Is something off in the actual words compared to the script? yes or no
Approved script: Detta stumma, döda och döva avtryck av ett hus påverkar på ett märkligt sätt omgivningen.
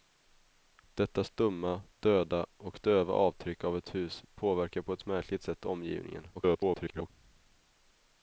yes